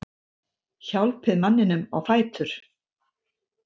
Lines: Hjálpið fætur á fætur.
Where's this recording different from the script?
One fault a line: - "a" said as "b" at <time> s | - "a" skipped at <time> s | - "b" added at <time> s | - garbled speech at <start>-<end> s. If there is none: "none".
- "fætur" said as "manninum" at 1.4 s